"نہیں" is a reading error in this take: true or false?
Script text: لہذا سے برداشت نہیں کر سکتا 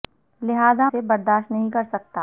false